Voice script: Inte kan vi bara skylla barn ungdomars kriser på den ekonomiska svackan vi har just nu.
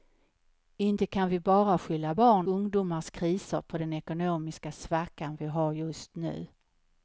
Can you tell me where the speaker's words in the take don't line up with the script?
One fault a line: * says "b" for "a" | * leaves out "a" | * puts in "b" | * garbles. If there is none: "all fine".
all fine